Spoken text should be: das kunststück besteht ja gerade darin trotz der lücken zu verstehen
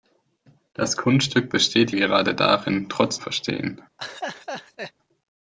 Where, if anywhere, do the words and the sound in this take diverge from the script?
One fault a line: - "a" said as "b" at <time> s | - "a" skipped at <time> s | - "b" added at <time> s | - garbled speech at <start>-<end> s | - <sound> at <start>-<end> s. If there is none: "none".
- "ja" skipped at 1.9 s
- "der lücken zu" skipped at 3.2 s
- laugh at 4.0-4.9 s